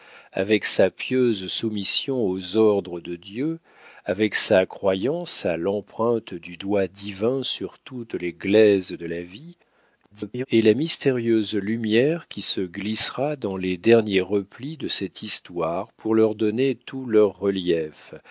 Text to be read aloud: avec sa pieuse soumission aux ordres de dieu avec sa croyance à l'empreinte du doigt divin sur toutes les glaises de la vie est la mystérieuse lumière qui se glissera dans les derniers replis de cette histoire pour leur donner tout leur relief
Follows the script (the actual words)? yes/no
no